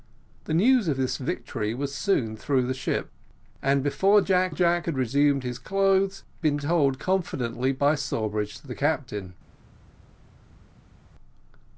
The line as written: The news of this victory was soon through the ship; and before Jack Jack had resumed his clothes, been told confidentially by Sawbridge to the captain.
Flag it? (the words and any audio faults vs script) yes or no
no